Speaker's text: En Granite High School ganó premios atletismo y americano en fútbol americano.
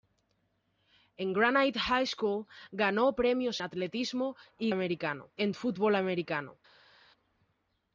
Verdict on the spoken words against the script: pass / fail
pass